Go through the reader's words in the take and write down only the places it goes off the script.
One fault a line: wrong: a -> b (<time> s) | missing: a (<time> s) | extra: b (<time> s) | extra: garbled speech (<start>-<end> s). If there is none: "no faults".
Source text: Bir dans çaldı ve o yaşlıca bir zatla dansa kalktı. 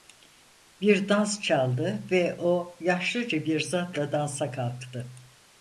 no faults